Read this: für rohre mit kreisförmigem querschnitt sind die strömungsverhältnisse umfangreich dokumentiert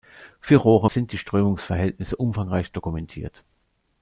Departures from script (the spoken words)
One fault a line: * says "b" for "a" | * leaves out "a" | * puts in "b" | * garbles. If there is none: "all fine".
* leaves out "mit kreisförmigem querschnitt"